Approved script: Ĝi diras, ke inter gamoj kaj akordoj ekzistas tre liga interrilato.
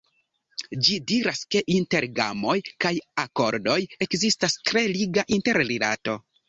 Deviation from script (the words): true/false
false